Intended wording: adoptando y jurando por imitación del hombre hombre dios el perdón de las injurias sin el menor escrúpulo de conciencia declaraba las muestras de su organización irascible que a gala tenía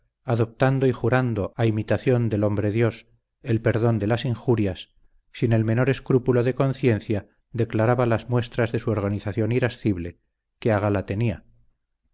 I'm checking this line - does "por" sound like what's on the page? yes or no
no